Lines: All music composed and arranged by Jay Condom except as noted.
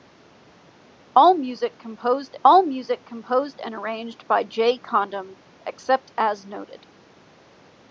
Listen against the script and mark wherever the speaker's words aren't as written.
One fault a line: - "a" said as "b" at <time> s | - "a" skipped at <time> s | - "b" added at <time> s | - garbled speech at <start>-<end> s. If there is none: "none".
- "all music composed" added at 2.4 s